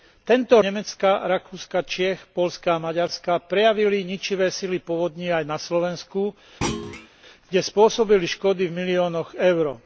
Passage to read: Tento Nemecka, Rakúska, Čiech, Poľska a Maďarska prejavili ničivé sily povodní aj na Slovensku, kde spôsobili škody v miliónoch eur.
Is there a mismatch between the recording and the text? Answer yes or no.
no